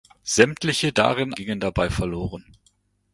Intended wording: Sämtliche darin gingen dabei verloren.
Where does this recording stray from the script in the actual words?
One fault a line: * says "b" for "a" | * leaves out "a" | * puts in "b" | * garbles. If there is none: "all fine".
all fine